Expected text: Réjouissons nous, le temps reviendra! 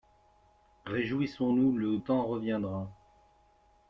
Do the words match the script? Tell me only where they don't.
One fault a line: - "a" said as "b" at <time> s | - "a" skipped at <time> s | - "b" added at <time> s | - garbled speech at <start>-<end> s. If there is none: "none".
none